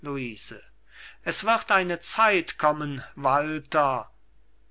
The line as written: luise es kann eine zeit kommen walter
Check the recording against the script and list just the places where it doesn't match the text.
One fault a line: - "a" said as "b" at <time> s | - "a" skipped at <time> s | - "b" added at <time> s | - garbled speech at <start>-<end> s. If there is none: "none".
- "kann" said as "wird" at 1.4 s